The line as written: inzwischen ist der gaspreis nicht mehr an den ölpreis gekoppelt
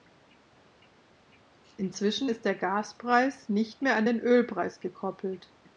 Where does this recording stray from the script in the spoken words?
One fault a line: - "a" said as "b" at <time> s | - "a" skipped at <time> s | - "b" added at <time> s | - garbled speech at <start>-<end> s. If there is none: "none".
none